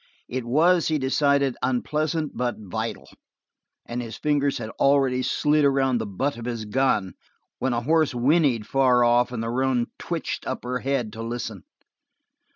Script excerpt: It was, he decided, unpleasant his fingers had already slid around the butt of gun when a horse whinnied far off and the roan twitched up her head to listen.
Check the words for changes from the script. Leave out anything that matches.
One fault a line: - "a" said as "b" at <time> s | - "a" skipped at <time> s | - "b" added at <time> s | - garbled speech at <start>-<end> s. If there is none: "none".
- "but vital and" added at 2.4 s
- "his" added at 6.5 s